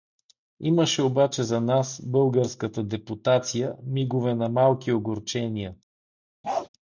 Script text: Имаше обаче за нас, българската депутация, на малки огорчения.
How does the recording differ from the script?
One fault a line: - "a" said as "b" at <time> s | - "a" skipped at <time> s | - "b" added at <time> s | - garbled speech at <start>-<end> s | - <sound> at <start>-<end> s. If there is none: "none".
- "мигове" added at 3.8 s
- bark at 6.4-6.7 s